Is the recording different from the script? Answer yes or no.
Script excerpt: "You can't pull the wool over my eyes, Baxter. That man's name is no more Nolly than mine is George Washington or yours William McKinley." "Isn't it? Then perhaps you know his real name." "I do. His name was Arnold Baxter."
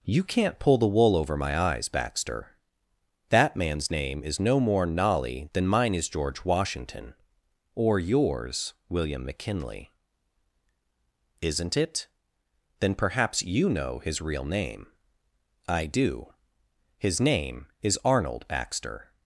yes